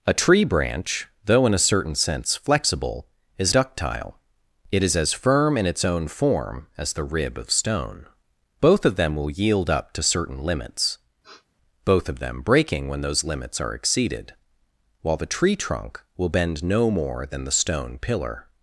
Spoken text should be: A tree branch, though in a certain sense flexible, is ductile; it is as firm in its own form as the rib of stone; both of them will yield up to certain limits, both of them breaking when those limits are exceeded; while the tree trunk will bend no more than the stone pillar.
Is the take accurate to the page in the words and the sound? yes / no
no